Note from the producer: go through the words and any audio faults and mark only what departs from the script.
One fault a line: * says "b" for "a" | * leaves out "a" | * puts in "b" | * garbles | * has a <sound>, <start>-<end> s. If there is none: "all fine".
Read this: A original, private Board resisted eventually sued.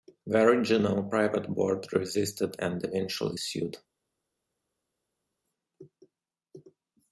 * says "The" for "A"
* puts in "and"